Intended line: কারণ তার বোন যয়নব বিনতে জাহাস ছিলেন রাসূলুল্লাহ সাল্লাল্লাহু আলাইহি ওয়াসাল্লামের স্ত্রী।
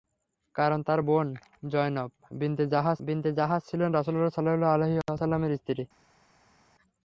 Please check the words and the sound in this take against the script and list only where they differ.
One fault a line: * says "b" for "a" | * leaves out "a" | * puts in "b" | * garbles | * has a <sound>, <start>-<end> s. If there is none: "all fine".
* puts in "বিনতে জাহাস"